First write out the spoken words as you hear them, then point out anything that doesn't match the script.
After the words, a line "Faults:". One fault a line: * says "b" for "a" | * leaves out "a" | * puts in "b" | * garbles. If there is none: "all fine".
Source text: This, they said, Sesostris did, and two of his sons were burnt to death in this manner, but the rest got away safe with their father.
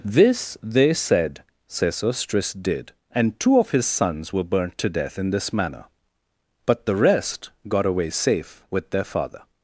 This, they said, Sesostris did, and two of his sons were burnt to death in this manner, but the rest got away safe with their father.
Faults:
all fine